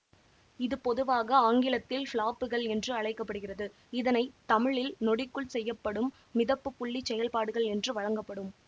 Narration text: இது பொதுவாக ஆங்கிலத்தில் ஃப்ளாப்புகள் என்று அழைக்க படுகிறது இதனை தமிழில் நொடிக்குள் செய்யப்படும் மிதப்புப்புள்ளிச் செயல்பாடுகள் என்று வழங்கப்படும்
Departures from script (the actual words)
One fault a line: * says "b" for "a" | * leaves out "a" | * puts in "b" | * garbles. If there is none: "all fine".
all fine